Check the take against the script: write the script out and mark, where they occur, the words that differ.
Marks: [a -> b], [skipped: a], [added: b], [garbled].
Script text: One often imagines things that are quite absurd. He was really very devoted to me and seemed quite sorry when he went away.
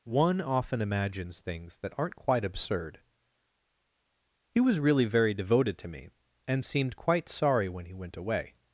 One often imagines things that [are -> aren't] quite absurd. He was really very devoted to me and seemed quite sorry when he went away.